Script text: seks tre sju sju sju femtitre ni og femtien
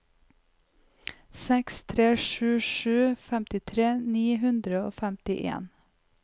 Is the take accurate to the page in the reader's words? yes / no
no